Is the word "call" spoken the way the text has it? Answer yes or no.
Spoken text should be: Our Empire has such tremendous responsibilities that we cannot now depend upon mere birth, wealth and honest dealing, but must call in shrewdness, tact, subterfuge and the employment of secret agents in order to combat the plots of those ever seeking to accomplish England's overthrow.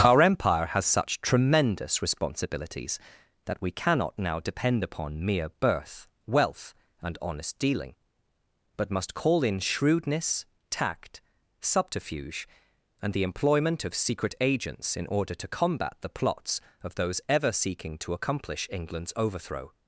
yes